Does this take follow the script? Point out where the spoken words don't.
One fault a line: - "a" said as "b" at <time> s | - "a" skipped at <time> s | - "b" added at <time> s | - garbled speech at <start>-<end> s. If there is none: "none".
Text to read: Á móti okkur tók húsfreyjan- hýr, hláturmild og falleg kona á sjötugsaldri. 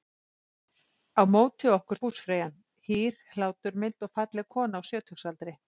- "tók" skipped at 2.0 s